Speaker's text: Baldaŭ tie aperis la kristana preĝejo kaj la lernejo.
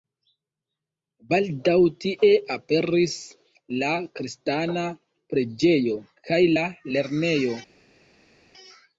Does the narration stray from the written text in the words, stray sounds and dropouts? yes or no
no